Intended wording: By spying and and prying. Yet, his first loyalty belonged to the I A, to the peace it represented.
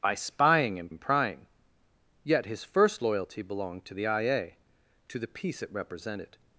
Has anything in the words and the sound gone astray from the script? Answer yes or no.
no